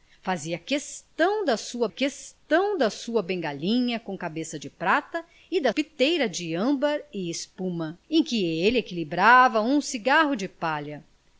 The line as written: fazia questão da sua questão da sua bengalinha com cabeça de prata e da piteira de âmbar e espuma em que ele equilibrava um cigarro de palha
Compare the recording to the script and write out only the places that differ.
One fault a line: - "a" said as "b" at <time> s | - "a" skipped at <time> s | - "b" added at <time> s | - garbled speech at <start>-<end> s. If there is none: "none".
none